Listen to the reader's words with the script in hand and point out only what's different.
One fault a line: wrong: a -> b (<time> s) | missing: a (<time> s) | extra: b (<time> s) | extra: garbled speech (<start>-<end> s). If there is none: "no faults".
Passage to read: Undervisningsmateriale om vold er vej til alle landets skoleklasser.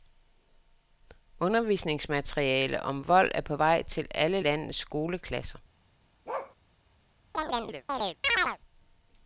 extra: på (3.4 s)